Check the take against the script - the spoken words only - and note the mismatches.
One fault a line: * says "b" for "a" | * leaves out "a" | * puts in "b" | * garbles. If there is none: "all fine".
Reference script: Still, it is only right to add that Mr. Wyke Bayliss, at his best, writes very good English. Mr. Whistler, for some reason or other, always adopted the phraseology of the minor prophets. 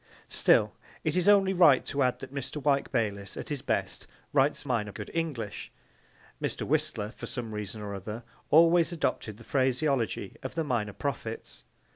* says "minor" for "very"